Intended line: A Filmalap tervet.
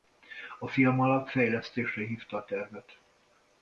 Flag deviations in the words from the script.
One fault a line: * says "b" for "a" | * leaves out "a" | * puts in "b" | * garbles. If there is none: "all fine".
* puts in "fejlesztésre hívta a"